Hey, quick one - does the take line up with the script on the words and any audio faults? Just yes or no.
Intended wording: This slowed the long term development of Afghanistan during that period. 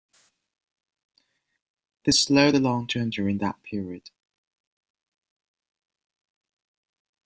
no